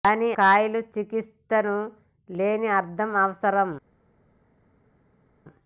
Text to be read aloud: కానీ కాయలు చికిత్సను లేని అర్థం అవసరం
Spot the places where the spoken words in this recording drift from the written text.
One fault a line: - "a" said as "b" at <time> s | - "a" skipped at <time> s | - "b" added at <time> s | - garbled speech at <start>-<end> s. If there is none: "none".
none